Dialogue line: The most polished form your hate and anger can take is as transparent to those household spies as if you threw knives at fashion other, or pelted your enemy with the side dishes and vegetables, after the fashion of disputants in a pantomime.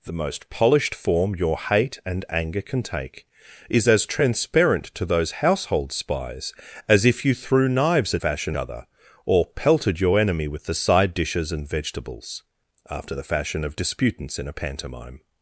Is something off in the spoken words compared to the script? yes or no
no